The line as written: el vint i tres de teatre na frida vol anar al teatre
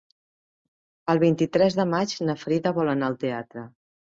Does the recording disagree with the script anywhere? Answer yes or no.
yes